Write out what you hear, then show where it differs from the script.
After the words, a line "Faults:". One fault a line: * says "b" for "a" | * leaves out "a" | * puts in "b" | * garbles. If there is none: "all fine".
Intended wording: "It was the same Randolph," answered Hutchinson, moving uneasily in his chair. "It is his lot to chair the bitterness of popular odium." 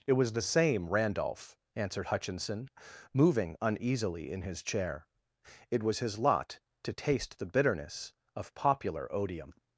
"It was the same Randolph," answered Hutchinson, moving uneasily in his chair. "It was his lot to taste the bitterness of popular odium."
Faults:
* says "was" for "is"
* says "taste" for "chair"